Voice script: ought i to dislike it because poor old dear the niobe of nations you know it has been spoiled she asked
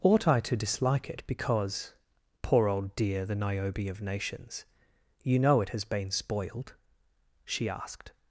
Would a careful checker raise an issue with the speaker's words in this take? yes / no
no